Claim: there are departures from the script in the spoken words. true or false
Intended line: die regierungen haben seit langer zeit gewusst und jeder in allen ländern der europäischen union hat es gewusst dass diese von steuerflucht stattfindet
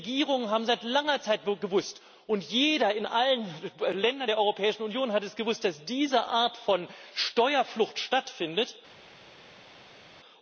true